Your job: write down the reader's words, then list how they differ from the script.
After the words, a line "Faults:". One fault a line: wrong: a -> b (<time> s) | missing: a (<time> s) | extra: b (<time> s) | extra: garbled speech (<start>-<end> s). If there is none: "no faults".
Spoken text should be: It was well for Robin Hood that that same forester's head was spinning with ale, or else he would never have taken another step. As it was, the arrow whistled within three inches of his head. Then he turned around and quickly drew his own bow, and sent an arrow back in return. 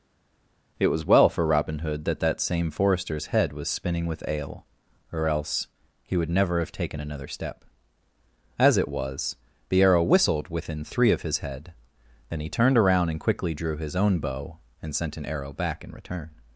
It was well for Robin Hood that that same forester's head was spinning with ale, or else he would never have taken another step. As it was, the arrow whistled within three of his head. Then he turned around and quickly drew his own bow, and sent an arrow back in return.
Faults:
missing: inches (11.1 s)